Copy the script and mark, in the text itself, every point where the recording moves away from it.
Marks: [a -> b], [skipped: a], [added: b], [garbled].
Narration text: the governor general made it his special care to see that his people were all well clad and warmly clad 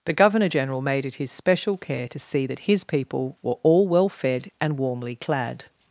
the governor general made it his special care to see that his people were all well [clad -> fed] and warmly clad